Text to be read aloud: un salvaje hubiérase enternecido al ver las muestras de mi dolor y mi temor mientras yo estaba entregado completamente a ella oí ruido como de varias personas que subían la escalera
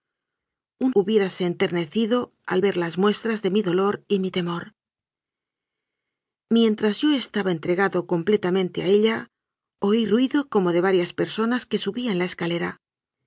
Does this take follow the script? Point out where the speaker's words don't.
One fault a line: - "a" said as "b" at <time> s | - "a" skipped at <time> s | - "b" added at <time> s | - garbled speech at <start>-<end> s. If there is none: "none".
- "salvaje" skipped at 0.9 s